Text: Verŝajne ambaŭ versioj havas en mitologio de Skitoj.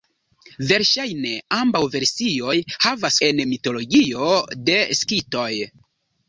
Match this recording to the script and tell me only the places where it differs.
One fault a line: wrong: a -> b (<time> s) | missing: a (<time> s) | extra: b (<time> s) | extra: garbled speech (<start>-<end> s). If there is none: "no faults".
no faults